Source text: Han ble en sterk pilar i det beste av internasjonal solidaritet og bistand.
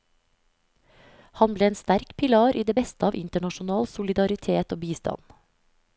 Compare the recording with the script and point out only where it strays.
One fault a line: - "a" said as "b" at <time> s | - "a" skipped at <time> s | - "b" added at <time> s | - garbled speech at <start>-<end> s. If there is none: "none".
none